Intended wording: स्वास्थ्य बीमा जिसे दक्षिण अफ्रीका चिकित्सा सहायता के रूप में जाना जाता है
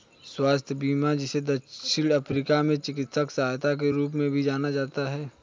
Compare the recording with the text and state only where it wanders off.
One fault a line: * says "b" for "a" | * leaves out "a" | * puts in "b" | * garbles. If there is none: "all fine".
* puts in "में"
* puts in "भी"